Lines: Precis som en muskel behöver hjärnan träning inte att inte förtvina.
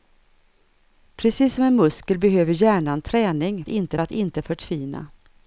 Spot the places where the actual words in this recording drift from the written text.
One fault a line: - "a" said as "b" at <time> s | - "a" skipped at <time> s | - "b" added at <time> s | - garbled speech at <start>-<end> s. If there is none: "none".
none